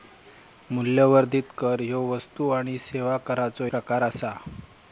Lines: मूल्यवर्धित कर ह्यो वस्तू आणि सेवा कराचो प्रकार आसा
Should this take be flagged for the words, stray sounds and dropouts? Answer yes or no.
no